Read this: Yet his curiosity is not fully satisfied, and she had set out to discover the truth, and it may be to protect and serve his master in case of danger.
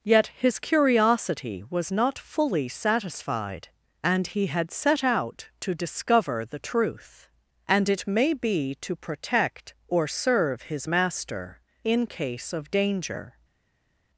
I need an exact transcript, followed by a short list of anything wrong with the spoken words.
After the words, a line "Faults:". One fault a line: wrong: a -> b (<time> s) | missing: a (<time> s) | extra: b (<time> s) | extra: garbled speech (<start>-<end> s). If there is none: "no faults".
Yet his curiosity was not fully satisfied, and he had set out to discover the truth, and it may be to protect or serve his master in case of danger.
Faults:
wrong: is -> was (1.7 s)
wrong: she -> he (4.2 s)
wrong: and -> or (9.9 s)